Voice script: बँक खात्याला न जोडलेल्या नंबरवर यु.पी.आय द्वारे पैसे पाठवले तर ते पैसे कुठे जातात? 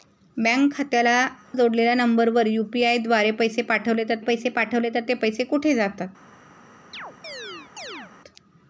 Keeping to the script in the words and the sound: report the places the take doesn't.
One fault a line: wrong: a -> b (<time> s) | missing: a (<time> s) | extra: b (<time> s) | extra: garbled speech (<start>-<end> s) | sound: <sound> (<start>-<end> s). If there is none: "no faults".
missing: न (1.2 s)
extra: पैसे पाठवले तर (4.2 s)
sound: chirp (6.9-8.1 s)